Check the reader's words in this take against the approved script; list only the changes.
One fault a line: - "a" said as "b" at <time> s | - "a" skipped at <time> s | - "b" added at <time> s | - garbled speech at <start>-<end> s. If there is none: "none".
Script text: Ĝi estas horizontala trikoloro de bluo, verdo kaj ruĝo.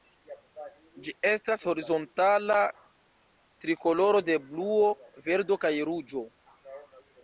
none